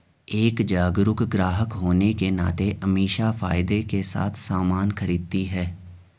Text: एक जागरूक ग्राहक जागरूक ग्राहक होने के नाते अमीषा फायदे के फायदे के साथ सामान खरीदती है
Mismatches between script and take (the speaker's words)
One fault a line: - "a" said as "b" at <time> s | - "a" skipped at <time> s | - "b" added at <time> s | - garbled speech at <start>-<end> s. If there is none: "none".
- "जागरूक ग्राहक" skipped at 1.7 s
- "फायदे के" skipped at 4.0 s